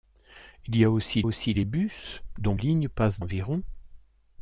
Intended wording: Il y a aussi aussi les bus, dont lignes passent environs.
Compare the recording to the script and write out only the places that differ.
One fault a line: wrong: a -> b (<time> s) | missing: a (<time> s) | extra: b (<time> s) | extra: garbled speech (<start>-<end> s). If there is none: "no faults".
no faults